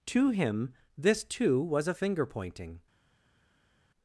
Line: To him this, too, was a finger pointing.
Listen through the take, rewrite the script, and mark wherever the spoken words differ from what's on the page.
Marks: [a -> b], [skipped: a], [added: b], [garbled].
To him this, too, was a finger pointing.